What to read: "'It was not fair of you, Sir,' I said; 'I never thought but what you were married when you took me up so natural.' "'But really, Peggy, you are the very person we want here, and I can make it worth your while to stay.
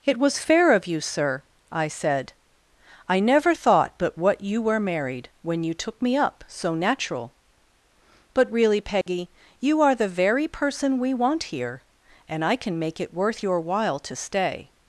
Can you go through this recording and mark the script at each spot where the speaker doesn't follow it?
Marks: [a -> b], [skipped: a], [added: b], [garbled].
"'It was [skipped: not] fair of you, Sir,' I said; 'I never thought but what you were married when you took me up so natural.' "'But really, Peggy, you are the very person we want here, and I can make it worth your while to stay.